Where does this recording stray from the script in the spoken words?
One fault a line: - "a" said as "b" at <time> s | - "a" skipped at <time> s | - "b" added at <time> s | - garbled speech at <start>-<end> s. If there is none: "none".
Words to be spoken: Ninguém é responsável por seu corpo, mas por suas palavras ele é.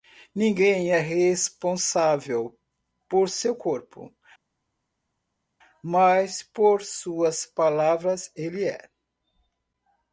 none